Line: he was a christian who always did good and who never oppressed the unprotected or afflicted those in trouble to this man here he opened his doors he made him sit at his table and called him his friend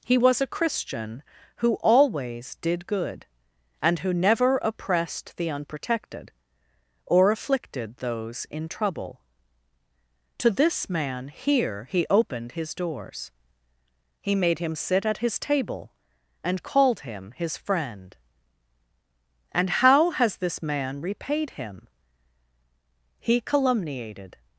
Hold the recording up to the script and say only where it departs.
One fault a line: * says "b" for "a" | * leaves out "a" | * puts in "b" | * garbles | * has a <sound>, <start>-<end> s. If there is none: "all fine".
* puts in "and how has this man repaid him he calumniated"